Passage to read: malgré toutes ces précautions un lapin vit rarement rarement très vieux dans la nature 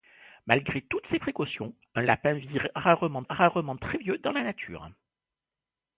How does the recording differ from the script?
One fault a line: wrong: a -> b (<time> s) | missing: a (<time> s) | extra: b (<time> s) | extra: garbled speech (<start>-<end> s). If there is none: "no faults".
no faults